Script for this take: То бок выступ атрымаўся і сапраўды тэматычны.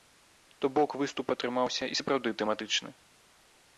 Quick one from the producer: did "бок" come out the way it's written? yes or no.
yes